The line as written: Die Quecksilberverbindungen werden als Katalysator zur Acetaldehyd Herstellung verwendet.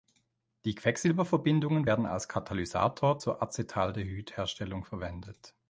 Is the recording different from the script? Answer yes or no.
no